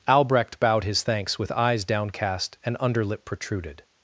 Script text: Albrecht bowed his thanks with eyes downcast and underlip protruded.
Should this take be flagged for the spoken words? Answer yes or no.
no